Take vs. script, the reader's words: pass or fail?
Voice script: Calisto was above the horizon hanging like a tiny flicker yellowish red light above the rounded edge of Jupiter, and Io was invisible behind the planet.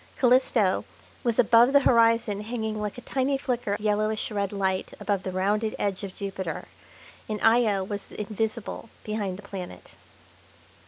pass